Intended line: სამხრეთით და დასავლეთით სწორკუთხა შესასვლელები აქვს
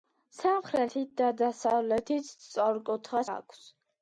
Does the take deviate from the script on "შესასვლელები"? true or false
true